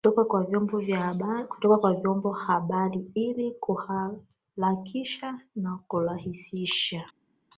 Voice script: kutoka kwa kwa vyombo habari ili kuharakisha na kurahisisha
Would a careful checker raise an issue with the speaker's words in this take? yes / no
yes